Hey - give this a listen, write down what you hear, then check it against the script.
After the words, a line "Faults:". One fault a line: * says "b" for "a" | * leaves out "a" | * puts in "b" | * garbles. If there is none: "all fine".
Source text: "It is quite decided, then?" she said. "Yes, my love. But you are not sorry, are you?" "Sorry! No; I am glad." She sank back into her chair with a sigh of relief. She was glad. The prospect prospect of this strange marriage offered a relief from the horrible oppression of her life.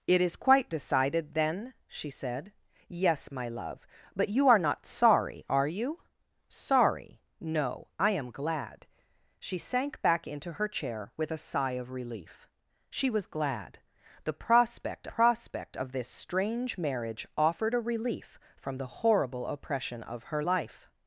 "It is quite decided, then?" she said. "Yes, my love. But you are not sorry, are you?" "Sorry! No; I am glad." She sank back into her chair with a sigh of relief. She was glad. The prospect prospect of this strange marriage offered a relief from the horrible oppression of her life.
Faults:
all fine